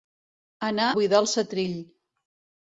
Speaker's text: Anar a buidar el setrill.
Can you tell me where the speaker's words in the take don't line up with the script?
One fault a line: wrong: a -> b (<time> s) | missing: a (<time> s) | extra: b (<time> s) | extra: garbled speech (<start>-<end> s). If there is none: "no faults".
missing: a (0.9 s)